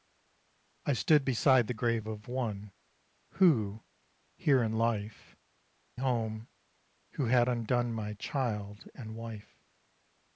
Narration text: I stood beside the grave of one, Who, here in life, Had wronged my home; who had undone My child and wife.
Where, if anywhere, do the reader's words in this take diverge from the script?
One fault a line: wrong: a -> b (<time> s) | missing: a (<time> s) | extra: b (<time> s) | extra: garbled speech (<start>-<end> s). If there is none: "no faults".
missing: Had wronged my (5.4 s)